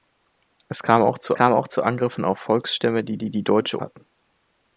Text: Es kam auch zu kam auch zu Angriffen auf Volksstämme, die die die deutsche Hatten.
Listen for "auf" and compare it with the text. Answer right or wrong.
right